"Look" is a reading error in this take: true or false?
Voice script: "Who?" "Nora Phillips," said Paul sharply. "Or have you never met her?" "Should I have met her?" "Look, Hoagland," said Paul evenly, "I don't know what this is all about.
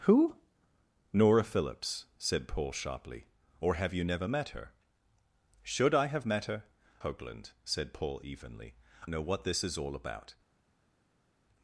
true